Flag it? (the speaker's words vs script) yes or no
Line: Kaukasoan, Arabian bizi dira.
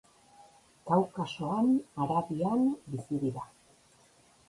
no